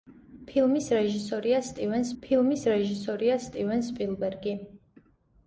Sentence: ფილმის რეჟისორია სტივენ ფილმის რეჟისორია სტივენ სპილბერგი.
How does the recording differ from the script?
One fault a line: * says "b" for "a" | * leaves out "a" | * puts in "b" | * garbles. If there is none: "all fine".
all fine